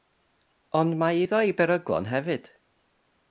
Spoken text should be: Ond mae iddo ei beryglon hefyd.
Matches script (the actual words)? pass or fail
pass